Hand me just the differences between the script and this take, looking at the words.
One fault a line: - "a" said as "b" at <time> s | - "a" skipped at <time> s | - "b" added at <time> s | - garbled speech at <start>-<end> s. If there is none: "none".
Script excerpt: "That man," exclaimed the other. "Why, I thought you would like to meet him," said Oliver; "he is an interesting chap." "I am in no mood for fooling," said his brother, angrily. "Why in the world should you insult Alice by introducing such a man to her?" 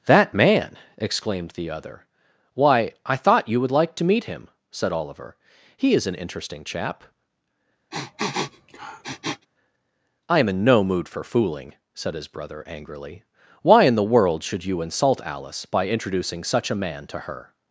none